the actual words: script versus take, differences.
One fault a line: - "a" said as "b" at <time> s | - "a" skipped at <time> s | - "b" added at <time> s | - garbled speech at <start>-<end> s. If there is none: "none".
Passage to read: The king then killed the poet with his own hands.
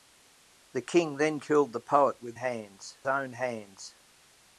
- "his" said as "hands" at 2.4 s